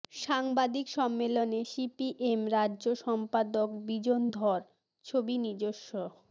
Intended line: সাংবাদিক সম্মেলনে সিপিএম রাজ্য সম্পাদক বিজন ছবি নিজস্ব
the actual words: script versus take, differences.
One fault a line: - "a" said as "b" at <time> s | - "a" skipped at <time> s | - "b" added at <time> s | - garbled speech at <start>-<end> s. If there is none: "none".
- "ধর" added at 4.3 s